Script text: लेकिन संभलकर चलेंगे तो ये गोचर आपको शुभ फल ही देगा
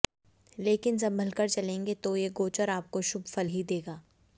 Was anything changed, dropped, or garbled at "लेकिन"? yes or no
no